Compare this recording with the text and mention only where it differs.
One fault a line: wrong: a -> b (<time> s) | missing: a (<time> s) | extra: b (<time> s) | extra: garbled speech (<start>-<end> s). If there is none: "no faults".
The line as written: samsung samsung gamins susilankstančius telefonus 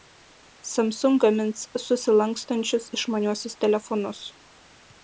missing: samsung (1.2 s)
extra: išmaniuosius (3.0 s)